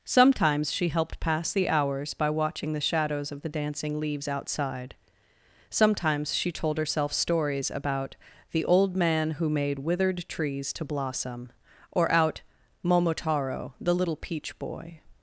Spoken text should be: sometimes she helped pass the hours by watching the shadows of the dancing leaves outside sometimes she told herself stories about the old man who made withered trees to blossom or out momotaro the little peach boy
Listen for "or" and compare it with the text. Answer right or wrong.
right